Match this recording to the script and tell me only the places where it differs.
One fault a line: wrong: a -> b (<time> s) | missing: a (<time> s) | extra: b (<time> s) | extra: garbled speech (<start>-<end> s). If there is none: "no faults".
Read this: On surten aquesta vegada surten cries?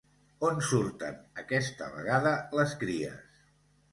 wrong: surten -> les (2.6 s)